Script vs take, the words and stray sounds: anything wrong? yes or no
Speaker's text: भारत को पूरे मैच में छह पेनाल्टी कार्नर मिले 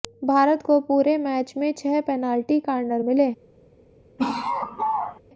yes